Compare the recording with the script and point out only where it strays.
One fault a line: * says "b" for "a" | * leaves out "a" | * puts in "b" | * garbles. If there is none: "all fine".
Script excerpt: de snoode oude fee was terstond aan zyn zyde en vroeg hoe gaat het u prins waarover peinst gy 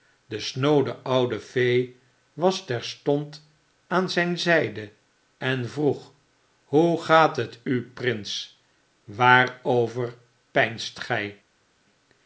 all fine